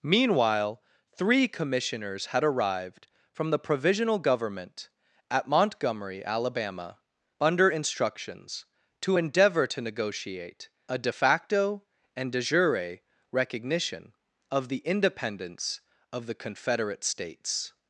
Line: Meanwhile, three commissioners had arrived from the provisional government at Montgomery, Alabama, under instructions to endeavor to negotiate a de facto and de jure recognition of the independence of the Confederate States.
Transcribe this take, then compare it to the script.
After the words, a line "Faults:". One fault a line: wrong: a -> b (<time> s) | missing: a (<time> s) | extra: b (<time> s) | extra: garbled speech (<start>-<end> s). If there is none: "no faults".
Meanwhile, three commissioners had arrived from the provisional government at Montgomery, Alabama, under instructions to endeavor to negotiate a de facto and de jure recognition of the independence of the Confederate States.
Faults:
no faults